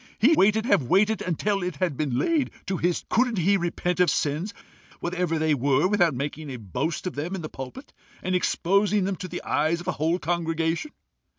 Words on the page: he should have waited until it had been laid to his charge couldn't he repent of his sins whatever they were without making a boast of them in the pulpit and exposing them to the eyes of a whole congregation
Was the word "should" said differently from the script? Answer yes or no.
yes